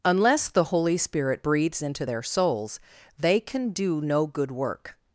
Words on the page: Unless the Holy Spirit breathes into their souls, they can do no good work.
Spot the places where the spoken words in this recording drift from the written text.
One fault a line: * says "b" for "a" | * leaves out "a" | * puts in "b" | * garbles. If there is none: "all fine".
all fine